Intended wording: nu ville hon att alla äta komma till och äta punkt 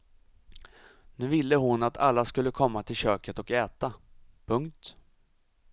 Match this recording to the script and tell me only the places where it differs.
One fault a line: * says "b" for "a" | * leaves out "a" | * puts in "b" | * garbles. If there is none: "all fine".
* says "skulle" for "äta"
* puts in "köket"